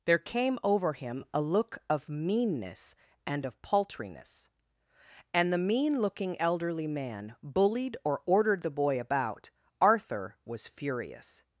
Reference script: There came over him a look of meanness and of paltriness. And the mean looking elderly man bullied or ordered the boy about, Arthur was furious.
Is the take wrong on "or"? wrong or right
right